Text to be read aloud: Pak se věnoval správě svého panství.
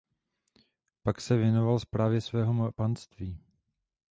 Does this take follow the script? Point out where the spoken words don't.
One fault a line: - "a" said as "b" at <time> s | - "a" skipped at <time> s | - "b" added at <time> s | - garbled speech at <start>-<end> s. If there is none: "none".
none